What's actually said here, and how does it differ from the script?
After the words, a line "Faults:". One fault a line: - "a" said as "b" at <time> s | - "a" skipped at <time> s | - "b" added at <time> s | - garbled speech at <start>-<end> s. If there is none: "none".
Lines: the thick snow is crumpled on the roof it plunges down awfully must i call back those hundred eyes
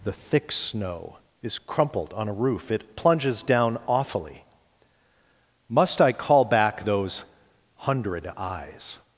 the thick snow is crumpled on a roof it plunges down awfully must i call back those hundred eyes
Faults:
- "the" said as "a" at 2.3 s